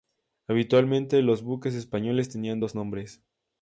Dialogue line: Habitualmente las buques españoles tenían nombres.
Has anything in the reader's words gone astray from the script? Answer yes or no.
yes